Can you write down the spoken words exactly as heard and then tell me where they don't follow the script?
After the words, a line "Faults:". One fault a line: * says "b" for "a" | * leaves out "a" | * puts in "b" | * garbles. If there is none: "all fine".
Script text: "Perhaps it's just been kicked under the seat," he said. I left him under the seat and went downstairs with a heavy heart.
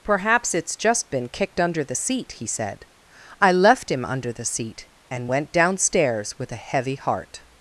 "Perhaps it's just been kicked under the seat," he said. I left him under the seat and went downstairs with a heavy heart.
Faults:
all fine